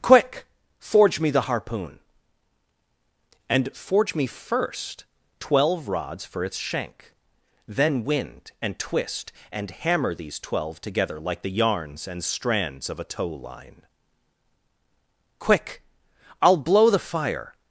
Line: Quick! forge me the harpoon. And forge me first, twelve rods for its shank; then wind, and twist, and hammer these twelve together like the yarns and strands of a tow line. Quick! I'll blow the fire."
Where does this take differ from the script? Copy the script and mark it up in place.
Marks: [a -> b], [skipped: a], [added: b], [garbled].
Quick! forge me the harpoon. And forge me first, twelve rods for its shank; then wind, and twist, and hammer these twelve together like the yarns and strands of a tow line. Quick! I'll blow the fire."